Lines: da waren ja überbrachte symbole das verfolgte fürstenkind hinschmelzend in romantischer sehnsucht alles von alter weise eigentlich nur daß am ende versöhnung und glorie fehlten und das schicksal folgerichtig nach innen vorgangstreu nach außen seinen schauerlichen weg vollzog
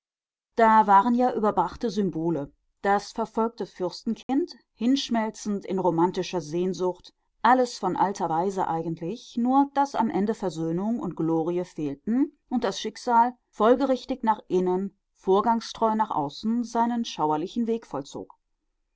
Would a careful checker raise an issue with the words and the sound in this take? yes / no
yes